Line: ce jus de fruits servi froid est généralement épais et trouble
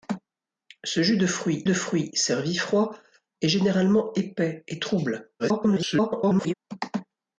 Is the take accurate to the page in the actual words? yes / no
no